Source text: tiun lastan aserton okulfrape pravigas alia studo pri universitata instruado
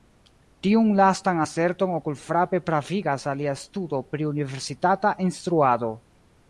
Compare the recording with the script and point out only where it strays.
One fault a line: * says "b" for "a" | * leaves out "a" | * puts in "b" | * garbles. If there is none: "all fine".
all fine